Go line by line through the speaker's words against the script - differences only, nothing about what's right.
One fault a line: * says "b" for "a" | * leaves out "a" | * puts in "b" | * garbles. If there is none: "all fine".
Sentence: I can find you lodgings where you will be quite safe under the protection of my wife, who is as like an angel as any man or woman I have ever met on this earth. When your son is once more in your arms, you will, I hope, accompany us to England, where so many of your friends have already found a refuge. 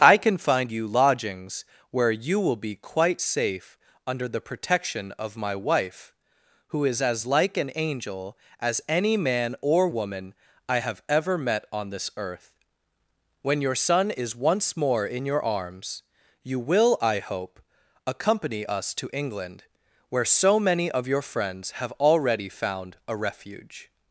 all fine